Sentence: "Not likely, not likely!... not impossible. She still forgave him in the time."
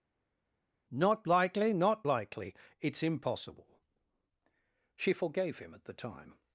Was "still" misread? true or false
true